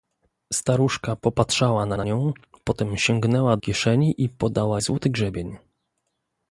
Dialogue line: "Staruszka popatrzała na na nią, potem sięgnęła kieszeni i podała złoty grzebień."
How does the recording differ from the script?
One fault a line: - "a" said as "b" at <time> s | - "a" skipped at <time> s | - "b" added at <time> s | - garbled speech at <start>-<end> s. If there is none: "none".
none